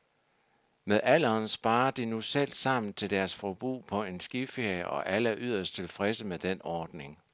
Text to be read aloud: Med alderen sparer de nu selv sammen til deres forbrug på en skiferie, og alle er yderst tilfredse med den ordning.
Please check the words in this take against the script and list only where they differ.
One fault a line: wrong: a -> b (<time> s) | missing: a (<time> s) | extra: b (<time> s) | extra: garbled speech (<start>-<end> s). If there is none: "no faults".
no faults